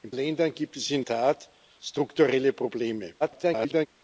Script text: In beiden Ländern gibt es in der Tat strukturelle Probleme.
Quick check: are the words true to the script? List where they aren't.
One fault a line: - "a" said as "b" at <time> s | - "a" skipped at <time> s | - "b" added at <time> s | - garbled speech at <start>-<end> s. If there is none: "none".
- "beiden" skipped at 0.1 s
- "der" skipped at 1.0 s
- garbled speech at 3.2-3.9 s